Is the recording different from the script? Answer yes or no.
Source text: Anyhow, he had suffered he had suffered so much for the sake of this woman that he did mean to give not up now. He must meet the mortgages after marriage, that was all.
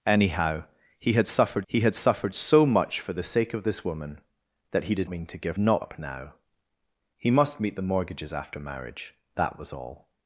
no